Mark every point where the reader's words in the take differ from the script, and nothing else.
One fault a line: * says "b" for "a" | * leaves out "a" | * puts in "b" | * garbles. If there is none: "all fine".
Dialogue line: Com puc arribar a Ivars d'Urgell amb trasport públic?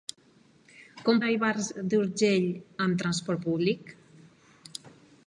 * leaves out "puc arribar"